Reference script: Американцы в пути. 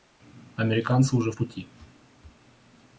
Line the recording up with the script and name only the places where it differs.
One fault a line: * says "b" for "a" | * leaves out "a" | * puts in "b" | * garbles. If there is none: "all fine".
* puts in "уже"